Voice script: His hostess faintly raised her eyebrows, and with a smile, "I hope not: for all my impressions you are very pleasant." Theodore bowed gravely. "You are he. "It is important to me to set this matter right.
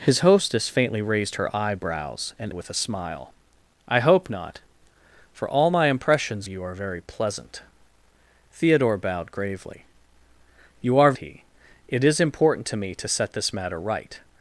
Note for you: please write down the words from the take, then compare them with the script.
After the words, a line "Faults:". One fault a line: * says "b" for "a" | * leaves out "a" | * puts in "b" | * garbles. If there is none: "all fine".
His hostess faintly raised her eyebrows, and with a smile, "I hope not: for all my impressions you are very pleasant." Theodore bowed gravely. "You are he. "It is important to me to set this matter right.
Faults:
all fine